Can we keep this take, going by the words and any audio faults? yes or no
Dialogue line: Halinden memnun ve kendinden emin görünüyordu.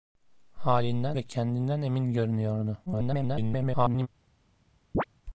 no